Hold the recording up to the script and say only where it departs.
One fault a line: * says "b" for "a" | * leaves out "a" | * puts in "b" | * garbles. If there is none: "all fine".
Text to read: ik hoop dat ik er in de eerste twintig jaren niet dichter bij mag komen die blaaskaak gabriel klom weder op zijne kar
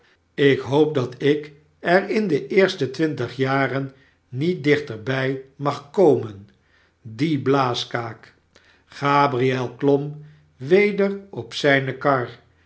all fine